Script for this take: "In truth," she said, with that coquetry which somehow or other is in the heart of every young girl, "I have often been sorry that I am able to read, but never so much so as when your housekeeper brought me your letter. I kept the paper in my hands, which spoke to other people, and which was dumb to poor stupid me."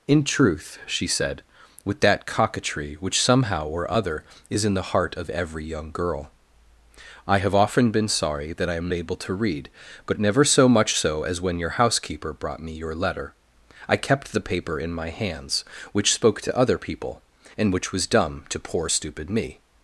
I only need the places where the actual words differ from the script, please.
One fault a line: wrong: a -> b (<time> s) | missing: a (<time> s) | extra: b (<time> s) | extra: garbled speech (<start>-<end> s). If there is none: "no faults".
no faults